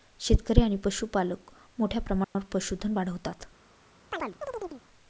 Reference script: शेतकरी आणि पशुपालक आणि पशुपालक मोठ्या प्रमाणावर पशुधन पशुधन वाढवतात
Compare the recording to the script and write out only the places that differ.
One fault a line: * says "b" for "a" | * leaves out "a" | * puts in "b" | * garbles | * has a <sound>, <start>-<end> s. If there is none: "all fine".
* leaves out "आणि पशुपालक"
* has a dropout, 2.2-2.4 s
* leaves out "पशुधन"
* has a chirp, 4.1-4.8 s